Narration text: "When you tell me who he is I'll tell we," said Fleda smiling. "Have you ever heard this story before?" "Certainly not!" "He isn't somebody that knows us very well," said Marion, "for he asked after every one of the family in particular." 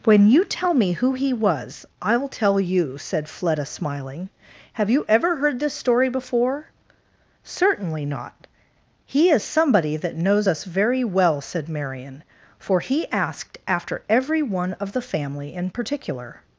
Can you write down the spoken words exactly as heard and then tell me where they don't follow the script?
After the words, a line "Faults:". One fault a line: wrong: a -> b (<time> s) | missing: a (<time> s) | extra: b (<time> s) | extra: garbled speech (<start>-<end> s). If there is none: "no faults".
"When you tell me who he was I'll tell you," said Fleda smiling. "Have you ever heard this story before?" "Certainly not!" "He is somebody that knows us very well," said Marion, "for he asked after every one of the family in particular."
Faults:
wrong: is -> was (1.3 s)
wrong: we -> you (2.6 s)
wrong: isn't -> is (9.3 s)